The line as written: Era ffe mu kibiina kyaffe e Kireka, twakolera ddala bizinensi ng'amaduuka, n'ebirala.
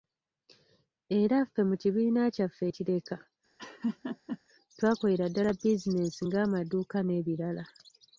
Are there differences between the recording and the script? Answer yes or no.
no